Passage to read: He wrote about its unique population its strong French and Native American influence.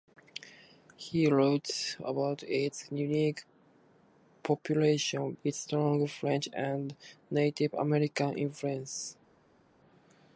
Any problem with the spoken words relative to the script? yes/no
no